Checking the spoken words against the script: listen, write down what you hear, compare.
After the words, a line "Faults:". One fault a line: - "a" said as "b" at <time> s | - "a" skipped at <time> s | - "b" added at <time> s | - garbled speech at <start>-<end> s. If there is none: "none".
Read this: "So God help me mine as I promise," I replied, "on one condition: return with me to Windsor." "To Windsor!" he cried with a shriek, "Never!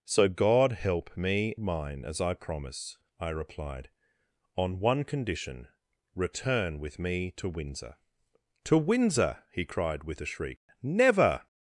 "So God help me mine as I promise," I replied, "on one condition: return with me to Windsor." "To Windsor!" he cried with a shriek, "Never!
Faults:
none